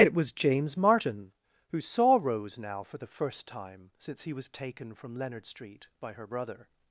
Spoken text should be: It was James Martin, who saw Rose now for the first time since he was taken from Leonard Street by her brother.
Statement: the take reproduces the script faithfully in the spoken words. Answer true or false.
true